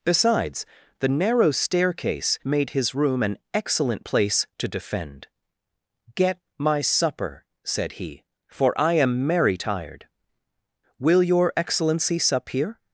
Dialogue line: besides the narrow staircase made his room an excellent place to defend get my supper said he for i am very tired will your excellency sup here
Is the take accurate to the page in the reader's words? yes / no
no